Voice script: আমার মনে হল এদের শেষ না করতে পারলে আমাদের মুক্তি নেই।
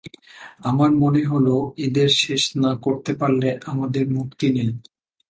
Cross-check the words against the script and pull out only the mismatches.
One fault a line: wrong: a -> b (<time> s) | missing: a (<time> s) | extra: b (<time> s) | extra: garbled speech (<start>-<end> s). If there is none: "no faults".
no faults